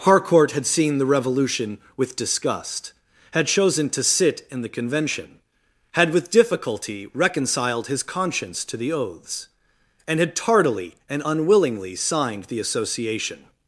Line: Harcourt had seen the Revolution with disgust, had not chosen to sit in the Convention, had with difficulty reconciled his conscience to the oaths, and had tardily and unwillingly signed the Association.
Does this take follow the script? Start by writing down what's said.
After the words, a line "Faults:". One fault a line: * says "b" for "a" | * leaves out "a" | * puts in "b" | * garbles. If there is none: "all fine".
Harcourt had seen the Revolution with disgust, had chosen to sit in the Convention, had with difficulty reconciled his conscience to the oaths, and had tardily and unwillingly signed the Association.
Faults:
* leaves out "not"